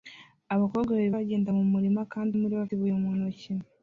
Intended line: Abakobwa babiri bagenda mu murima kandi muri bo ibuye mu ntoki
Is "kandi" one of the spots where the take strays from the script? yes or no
no